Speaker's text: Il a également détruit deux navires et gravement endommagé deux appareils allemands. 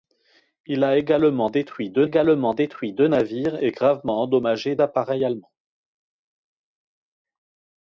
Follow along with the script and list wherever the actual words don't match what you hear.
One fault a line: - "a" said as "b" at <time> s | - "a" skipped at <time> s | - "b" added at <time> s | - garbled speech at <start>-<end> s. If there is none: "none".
- "également détruit deux" added at 2.0 s
- "deux" skipped at 4.8 s